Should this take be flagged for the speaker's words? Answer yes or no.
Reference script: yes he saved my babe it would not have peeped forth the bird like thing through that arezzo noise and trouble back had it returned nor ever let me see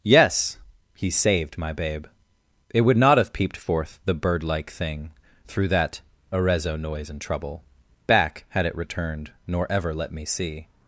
no